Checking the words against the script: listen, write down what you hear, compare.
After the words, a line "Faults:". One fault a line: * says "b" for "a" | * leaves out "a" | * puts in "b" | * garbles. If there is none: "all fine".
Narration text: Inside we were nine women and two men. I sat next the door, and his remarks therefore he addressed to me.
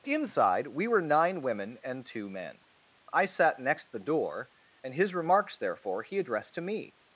Inside we were nine women and two men. I sat next the door, and his remarks therefore he addressed to me.
Faults:
all fine